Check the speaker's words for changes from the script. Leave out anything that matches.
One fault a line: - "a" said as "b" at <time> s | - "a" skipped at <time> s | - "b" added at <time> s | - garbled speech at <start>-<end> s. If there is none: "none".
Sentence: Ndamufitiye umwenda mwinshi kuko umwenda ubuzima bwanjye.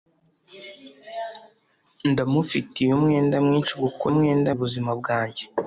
none